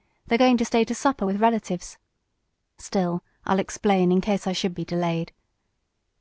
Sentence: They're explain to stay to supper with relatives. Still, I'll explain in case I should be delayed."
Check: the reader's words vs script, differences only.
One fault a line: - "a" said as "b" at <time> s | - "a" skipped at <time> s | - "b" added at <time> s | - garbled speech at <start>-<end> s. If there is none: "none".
- "explain" said as "going" at 0.4 s